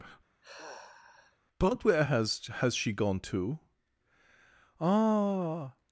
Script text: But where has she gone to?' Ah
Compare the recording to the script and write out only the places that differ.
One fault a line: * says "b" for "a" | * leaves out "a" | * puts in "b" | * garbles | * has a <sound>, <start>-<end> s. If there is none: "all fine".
* has a sigh, 0.4-1.4 s
* puts in "has"